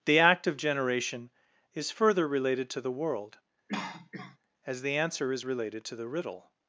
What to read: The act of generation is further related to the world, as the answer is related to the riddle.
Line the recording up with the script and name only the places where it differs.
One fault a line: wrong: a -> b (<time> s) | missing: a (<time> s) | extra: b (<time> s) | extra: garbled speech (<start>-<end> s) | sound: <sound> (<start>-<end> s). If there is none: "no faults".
sound: cough (3.7-4.4 s)